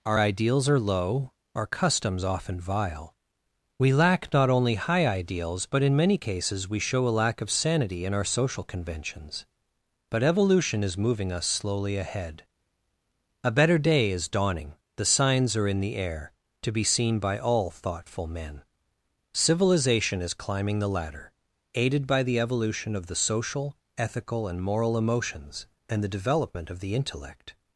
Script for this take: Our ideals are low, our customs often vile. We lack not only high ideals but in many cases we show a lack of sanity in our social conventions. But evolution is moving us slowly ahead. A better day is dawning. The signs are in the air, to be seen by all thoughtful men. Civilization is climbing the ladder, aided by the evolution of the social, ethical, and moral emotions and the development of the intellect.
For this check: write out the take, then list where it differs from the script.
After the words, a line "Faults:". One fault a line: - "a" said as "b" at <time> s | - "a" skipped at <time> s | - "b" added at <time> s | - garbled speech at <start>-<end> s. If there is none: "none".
Our ideals are low, our customs often vile. We lack not only high ideals but in many cases we show a lack of sanity in our social conventions. But evolution is moving us slowly ahead. A better day is dawning. The signs are in the air, to be seen by all thoughtful men. Civilization is climbing the ladder, aided by the evolution of the social, ethical, and moral emotions and the development of the intellect.
Faults:
none